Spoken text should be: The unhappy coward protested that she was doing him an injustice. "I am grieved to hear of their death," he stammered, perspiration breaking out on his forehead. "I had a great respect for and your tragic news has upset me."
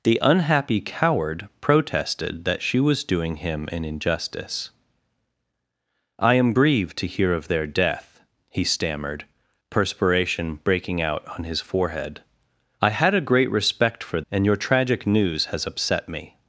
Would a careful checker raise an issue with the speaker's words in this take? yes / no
no